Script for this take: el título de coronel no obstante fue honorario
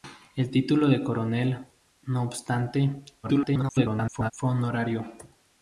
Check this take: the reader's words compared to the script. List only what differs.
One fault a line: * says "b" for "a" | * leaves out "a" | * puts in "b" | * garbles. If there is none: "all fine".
* garbles